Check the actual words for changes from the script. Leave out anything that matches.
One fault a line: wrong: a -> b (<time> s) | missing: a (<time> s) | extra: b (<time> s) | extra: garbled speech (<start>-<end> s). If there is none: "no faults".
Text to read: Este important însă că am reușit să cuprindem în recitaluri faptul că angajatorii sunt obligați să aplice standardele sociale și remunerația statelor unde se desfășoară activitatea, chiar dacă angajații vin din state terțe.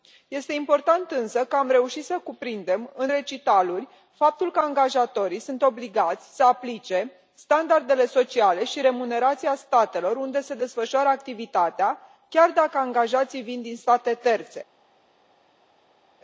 no faults